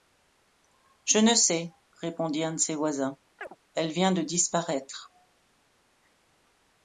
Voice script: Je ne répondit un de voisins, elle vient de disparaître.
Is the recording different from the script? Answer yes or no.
yes